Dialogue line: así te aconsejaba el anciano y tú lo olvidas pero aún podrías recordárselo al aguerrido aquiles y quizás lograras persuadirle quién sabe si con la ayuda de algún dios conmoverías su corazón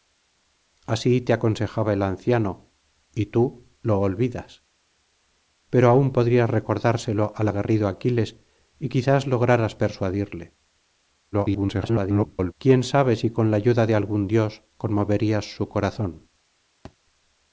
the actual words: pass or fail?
fail